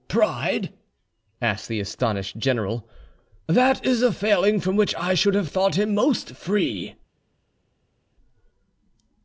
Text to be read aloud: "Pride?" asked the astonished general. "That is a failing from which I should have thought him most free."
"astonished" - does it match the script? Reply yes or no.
yes